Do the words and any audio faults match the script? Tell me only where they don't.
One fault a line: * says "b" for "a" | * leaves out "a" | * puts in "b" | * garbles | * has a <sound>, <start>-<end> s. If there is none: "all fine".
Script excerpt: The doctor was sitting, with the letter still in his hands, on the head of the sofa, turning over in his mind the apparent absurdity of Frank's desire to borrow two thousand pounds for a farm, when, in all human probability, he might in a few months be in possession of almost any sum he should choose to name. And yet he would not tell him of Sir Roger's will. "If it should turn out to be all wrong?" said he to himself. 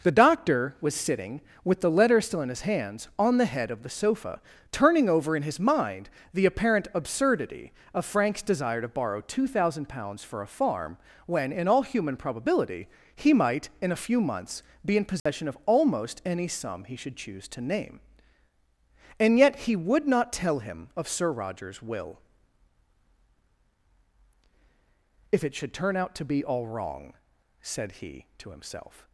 * has a dropout, 15.2-15.3 s